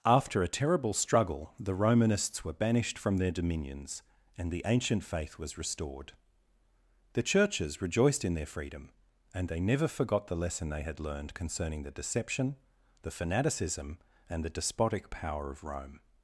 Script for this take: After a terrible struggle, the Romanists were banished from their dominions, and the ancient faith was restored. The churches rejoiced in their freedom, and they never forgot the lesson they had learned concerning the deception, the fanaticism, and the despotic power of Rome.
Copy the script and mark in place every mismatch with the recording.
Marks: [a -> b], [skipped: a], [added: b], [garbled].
After a terrible struggle, the Romanists were banished from their dominions, and the ancient faith was restored. The churches rejoiced in their freedom, and they never forgot the lesson they had learned concerning the deception, the fanaticism, and the despotic power of Rome.